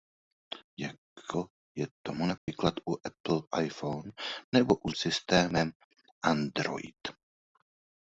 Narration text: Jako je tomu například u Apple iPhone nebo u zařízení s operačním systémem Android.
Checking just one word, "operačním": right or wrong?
wrong